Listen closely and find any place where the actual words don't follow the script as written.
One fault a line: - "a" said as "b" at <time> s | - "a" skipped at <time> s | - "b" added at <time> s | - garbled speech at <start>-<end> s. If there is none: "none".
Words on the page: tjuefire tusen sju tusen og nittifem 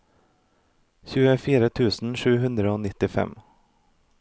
- "tusen" said as "hundre" at 2.4 s